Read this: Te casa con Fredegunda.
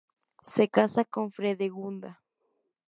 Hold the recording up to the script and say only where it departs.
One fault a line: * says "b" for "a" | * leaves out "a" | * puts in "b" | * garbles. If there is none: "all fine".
* says "Se" for "Te"